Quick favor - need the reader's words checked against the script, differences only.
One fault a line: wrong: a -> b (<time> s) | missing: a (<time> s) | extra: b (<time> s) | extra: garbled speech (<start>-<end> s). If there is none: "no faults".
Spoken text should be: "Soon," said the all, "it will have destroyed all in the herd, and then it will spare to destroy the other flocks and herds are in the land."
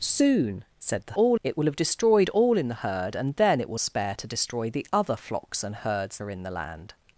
no faults